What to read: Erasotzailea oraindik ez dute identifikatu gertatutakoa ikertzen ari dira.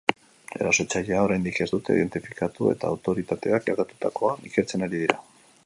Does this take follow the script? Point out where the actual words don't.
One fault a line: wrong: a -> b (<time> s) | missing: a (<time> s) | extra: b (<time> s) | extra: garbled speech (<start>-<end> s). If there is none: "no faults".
extra: eta autoritateak (2.8 s)